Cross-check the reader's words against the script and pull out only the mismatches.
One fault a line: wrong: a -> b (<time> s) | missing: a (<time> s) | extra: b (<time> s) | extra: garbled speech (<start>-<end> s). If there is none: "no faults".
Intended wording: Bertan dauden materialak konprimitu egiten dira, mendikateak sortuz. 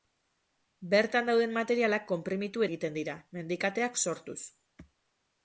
no faults